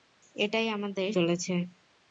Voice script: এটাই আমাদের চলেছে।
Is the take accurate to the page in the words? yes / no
yes